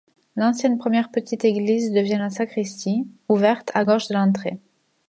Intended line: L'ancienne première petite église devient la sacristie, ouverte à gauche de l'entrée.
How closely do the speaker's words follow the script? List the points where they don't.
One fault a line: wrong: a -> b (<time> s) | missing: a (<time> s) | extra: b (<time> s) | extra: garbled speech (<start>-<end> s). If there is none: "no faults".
no faults